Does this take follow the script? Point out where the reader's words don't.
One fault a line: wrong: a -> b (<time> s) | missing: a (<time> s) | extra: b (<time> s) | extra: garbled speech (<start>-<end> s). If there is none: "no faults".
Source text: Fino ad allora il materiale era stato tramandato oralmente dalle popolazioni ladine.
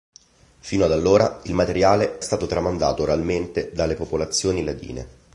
missing: era (2.2 s)